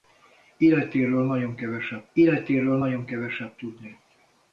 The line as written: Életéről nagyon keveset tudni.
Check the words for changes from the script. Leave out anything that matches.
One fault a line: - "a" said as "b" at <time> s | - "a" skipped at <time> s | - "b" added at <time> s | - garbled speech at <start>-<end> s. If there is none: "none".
- "életéről nagyon keveset" added at 2.1 s